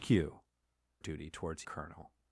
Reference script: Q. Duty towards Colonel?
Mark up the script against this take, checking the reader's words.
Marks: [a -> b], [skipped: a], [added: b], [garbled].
Q. Duty towards Colonel?